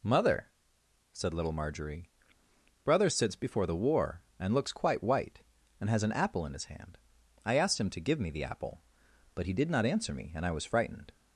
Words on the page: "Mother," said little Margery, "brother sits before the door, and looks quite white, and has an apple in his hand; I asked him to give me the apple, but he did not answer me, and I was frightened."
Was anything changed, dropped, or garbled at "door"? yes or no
yes